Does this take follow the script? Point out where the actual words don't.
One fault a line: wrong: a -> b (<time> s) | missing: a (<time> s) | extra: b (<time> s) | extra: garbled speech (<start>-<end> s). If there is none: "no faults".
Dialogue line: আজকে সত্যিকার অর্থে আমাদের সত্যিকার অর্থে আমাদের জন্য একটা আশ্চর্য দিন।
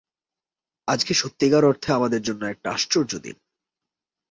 missing: সত্যিকার অর্থে আমাদের (2.2 s)